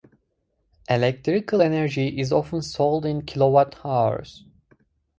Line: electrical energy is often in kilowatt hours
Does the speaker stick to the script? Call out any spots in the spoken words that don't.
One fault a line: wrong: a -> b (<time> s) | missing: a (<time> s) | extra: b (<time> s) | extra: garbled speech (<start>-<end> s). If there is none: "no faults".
extra: sold (2.6 s)